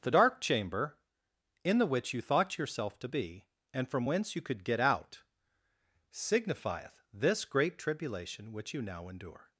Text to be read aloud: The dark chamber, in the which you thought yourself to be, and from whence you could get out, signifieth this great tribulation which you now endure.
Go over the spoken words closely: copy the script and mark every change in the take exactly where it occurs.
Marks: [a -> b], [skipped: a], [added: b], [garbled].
The dark chamber, in the which you thought yourself to be, and from whence you could get out, signifieth this great tribulation which you now endure.